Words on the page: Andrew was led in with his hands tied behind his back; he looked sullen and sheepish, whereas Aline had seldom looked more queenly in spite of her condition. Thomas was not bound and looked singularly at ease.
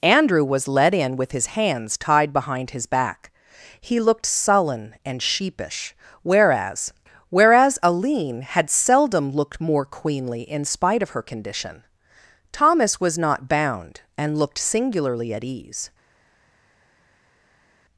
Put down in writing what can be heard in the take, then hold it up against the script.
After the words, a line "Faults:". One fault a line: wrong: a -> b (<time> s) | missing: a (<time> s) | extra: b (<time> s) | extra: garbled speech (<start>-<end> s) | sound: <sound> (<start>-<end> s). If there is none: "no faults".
Andrew was led in with his hands tied behind his back; he looked sullen and sheepish, whereas whereas Aline had seldom looked more queenly in spite of her condition. Thomas was not bound and looked singularly at ease.
Faults:
extra: whereas (7.3 s)